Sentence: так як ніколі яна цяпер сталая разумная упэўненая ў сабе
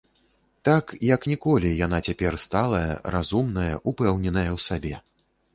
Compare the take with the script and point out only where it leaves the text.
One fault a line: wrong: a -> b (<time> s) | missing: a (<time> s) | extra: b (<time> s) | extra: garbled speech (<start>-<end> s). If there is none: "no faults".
no faults